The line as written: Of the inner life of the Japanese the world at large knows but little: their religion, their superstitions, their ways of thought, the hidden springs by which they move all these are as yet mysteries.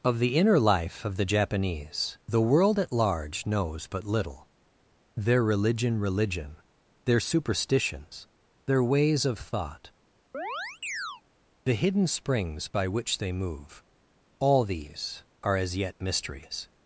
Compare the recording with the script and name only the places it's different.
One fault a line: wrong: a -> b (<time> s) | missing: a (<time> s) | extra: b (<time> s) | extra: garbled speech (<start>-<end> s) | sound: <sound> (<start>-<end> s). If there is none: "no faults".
extra: religion (6.0 s)
sound: chirp (10.3-11.2 s)